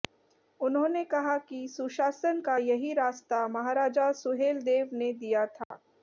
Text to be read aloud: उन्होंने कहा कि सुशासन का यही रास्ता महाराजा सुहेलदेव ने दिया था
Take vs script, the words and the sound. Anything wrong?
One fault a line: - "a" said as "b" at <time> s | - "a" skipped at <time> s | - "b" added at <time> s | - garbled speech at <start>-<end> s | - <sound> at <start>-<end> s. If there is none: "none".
- dropout at 5.6-5.7 s